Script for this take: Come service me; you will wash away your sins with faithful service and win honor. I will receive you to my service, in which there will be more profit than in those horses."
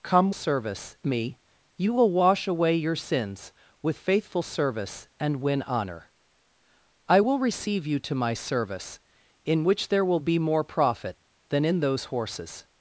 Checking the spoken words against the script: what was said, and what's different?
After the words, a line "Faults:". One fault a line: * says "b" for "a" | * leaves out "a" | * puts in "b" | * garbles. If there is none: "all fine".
Come service me; you will wash away your sins with faithful service and win honor. I will receive you to my service, in which there will be more profit than in those horses."
Faults:
all fine